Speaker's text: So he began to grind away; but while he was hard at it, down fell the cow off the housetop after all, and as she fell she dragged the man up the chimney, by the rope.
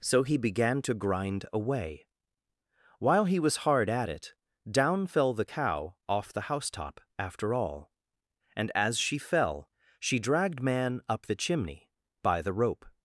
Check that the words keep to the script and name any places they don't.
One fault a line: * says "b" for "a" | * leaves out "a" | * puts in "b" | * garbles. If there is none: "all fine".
* leaves out "but"
* leaves out "the"